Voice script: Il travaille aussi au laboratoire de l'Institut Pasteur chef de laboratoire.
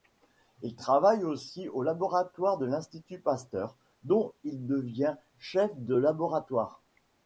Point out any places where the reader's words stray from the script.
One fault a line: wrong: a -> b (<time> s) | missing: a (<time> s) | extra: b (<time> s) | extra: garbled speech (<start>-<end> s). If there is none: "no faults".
extra: dont il devient (4.0 s)